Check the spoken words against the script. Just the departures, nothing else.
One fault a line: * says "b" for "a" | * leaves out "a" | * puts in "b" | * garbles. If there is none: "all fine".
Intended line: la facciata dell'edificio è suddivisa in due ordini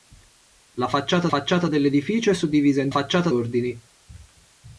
* puts in "facciata"
* says "facciata" for "due"